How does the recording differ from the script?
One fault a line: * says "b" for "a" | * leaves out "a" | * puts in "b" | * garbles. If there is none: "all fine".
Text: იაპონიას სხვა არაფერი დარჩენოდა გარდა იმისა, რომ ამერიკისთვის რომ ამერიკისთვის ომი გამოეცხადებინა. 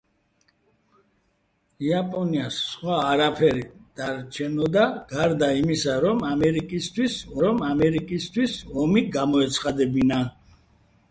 all fine